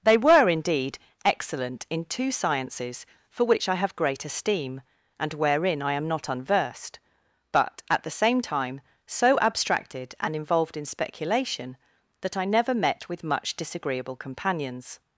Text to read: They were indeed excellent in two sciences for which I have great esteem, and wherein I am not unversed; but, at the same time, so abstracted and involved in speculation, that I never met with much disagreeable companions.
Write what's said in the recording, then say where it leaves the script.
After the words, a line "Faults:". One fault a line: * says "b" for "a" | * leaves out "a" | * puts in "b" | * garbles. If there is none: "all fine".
They were indeed excellent in two sciences for which I have great esteem, and wherein I am not unversed; but, at the same time, so abstracted and involved in speculation, that I never met with much disagreeable companions.
Faults:
all fine